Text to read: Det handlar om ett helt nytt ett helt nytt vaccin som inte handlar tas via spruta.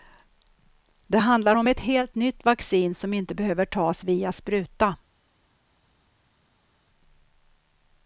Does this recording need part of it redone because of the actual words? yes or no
yes